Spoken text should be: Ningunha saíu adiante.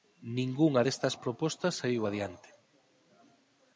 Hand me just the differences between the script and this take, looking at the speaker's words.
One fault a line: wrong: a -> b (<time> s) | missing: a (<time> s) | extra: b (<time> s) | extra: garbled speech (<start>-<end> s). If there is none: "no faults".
extra: destas propostas (0.9 s)